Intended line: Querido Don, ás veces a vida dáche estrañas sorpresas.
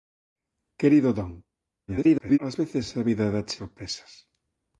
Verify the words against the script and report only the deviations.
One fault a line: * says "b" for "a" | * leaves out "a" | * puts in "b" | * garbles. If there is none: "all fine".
* garbles
* leaves out "estrañas"